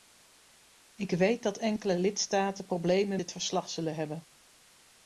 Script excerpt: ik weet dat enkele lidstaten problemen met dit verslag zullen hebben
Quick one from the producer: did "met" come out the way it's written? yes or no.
no